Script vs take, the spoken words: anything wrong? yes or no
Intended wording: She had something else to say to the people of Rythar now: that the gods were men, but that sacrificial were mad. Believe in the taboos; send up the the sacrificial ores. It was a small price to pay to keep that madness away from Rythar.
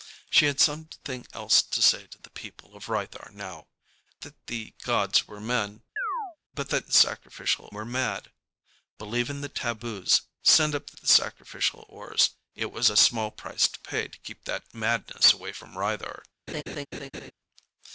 no